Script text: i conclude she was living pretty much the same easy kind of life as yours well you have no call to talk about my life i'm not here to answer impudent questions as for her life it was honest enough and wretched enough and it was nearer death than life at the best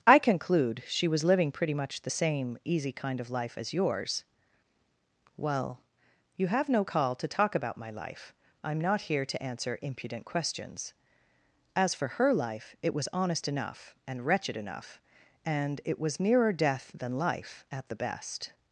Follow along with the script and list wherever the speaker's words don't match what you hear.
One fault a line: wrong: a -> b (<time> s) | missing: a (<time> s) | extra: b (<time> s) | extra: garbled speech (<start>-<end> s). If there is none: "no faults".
no faults